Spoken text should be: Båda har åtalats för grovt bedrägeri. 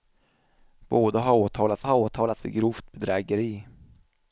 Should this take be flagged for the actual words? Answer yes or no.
yes